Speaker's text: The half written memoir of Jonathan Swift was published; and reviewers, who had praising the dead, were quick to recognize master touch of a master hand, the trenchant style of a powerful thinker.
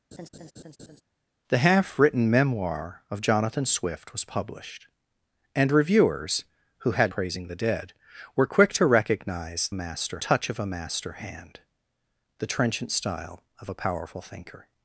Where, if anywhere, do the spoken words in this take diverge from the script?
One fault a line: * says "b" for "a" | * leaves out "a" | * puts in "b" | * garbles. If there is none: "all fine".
all fine